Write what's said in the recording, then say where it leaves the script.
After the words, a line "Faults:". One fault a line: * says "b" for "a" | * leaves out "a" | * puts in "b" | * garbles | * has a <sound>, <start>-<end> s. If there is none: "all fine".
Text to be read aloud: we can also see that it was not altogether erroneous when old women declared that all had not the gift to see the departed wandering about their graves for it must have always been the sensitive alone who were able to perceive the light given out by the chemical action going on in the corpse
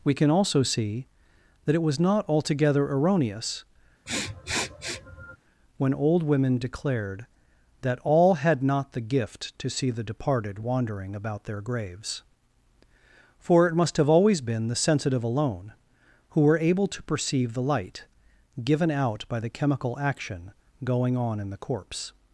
we can also see that it was not altogether erroneous when old women declared that all had not the gift to see the departed wandering about their graves for it must have always been the sensitive alone who were able to perceive the light given out by the chemical action going on in the corpse
Faults:
* has a sniff, 4.1-5.4 s